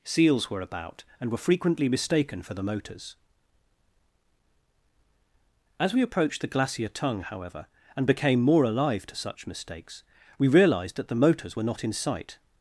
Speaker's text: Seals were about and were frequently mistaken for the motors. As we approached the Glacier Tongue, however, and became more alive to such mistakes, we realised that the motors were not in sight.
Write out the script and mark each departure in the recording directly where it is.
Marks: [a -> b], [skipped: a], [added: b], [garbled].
Seals were about and were frequently mistaken for the motors. As we approached the Glacier Tongue, however, and became more alive to such mistakes, we realised that the motors were not in sight.